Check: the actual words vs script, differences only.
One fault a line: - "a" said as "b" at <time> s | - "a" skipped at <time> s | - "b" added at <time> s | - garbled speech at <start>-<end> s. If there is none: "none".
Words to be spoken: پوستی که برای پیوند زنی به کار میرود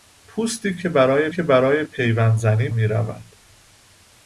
- "که برای" added at 1.3 s
- "به کار" skipped at 2.7 s